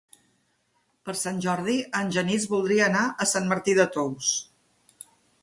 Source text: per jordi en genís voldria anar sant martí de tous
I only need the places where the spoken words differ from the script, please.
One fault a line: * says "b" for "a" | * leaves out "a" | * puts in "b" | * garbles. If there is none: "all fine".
* puts in "sant"
* puts in "a"